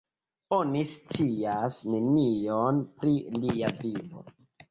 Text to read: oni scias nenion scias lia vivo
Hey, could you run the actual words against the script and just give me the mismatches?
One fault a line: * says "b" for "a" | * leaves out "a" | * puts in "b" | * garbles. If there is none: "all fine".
* says "pri" for "scias"